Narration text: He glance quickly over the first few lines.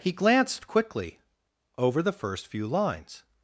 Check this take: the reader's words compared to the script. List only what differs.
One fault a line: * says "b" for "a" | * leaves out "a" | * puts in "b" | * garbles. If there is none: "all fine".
* says "glanced" for "glance"